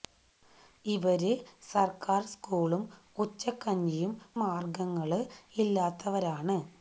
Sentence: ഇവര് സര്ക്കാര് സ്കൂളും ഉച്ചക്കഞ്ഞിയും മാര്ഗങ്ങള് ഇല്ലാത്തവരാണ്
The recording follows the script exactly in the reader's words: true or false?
true